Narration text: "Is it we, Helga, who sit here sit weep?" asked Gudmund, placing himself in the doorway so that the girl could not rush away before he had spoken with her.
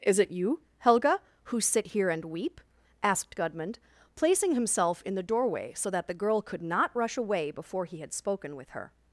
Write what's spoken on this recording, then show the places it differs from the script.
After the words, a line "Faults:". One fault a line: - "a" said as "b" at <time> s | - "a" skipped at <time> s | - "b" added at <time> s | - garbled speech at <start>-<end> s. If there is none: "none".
"Is it you, Helga, who sit here and weep?" asked Gudmund, placing himself in the doorway so that the girl could not rush away before he had spoken with her.
Faults:
- "we" said as "you" at 0.3 s
- "sit" said as "and" at 2.1 s